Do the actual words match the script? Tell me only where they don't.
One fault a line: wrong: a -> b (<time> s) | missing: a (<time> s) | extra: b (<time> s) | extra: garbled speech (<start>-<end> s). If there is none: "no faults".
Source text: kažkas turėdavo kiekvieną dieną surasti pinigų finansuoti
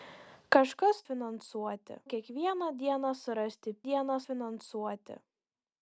wrong: turėdavo -> finansuoti (1.1 s)
wrong: pinigų -> dieną (3.9 s)